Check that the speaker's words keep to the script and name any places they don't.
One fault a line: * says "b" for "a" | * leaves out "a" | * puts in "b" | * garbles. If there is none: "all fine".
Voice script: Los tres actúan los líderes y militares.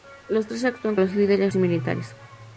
all fine